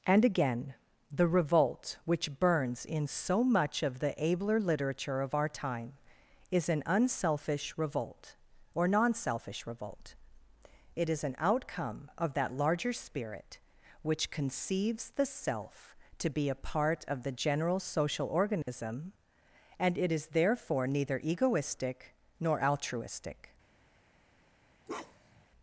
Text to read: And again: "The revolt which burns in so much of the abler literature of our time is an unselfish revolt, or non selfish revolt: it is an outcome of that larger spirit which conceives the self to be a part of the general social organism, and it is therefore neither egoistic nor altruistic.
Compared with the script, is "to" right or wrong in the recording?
right